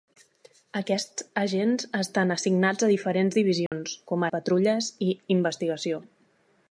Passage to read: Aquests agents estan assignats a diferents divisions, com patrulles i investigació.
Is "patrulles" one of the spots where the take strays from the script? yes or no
no